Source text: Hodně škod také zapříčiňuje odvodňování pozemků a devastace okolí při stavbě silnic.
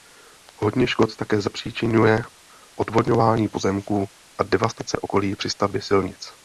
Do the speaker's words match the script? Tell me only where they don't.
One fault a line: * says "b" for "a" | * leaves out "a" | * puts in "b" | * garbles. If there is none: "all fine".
all fine